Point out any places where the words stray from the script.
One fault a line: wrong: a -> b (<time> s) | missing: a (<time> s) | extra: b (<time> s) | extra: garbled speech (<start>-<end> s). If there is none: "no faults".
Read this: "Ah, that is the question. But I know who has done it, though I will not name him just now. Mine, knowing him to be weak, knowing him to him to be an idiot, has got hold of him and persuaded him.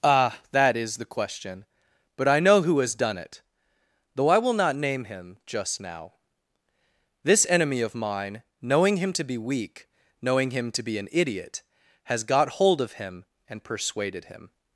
extra: This enemy of (7.2 s)
missing: him to (10.8 s)